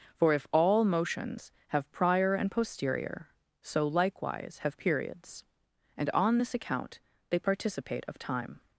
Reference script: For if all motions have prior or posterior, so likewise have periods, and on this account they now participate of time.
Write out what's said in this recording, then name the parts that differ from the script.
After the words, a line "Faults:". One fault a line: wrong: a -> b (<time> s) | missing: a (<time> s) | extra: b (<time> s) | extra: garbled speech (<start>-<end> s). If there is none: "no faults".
For if all motions have prior and posterior, so likewise have periods, and on this account they participate of time.
Faults:
wrong: or -> and (2.4 s)
missing: now (7.4 s)